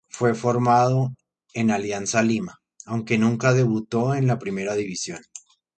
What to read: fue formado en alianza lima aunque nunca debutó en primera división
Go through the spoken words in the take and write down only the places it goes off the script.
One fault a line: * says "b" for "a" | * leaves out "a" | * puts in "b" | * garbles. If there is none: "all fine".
* puts in "la"